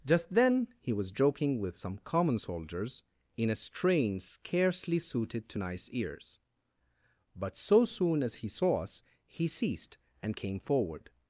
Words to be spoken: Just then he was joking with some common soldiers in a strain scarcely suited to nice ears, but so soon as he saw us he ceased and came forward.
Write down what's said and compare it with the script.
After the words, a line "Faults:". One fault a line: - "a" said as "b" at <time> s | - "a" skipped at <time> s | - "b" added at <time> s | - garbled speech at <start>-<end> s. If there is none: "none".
Just then he was joking with some common soldiers in a strain scarcely suited to nice ears, but so soon as he saw us he ceased and came forward.
Faults:
none